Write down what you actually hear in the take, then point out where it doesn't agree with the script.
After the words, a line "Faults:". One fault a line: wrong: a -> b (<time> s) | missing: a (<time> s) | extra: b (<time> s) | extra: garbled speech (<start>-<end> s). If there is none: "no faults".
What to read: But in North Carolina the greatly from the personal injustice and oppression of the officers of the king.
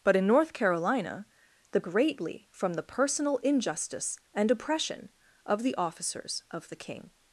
But in North Carolina the greatly from the personal injustice and oppression of the officers of the king.
Faults:
no faults